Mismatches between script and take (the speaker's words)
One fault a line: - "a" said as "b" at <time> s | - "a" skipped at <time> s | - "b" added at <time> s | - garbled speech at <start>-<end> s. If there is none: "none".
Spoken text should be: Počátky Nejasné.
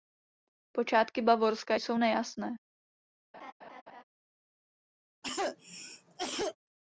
- "Bavorska jsou" added at 1.2 s